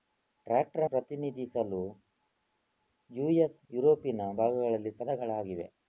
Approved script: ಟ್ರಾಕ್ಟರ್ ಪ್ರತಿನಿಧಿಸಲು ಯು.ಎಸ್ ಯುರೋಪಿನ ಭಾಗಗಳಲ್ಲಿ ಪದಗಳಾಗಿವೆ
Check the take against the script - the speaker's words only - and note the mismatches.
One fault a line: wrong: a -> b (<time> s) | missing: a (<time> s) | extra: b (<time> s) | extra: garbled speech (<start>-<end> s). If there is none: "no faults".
no faults